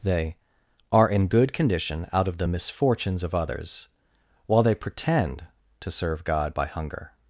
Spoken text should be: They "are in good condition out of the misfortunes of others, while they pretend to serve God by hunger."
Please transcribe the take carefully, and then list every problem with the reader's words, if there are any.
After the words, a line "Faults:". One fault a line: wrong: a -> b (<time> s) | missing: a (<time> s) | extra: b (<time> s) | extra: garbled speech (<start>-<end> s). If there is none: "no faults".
They "are in good condition out of the misfortunes of others, while they pretend to serve God by hunger."
Faults:
no faults